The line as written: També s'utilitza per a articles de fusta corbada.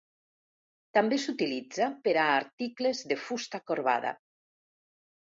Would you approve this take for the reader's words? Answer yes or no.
yes